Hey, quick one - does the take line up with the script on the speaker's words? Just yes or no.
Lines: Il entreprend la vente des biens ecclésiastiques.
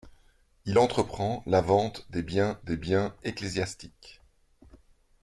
no